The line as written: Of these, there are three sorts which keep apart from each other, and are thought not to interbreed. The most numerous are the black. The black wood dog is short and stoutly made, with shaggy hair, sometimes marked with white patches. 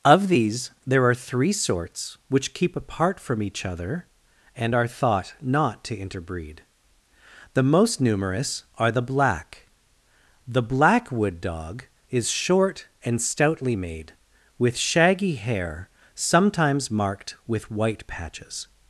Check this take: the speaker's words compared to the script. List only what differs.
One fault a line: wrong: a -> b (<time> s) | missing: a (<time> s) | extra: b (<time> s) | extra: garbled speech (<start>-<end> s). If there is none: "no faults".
no faults